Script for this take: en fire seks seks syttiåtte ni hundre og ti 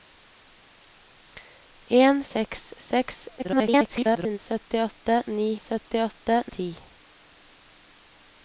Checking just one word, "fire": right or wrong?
wrong